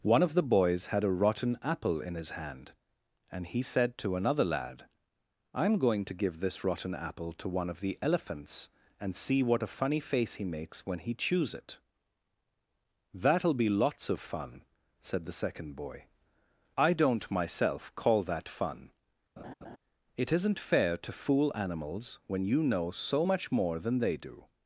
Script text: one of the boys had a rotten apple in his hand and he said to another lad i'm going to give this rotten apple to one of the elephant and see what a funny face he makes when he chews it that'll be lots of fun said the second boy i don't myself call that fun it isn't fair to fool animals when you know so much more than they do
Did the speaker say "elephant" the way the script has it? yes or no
no